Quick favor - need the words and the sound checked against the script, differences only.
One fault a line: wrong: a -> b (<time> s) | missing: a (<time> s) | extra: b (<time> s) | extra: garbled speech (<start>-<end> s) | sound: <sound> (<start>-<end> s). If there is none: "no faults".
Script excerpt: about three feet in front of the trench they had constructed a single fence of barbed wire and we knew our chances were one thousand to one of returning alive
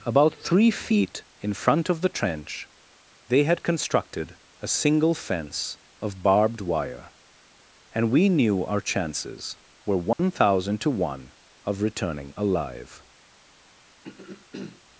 sound: dropout (10.1-10.2 s)
sound: throat clearing (14.0-14.8 s)